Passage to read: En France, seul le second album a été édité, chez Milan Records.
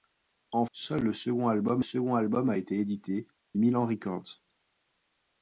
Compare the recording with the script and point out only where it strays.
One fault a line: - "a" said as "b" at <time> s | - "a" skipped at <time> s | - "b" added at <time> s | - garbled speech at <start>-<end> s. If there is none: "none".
- "France" skipped at 0.7 s
- "second album" added at 1.8 s
- "chez" skipped at 3.3 s